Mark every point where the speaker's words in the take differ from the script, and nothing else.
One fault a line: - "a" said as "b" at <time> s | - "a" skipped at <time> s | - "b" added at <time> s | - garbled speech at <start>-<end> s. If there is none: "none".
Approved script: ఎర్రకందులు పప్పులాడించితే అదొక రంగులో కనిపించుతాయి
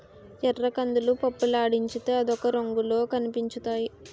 none